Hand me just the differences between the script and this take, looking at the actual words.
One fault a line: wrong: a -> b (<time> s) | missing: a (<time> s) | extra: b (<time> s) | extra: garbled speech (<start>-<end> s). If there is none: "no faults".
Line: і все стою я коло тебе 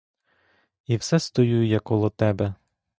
no faults